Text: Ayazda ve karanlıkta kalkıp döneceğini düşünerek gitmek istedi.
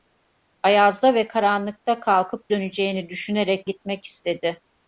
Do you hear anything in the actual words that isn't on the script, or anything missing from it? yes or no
no